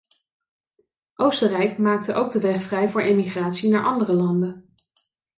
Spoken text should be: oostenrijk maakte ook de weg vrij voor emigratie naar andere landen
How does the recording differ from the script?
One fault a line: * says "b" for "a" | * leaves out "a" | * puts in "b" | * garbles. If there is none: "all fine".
all fine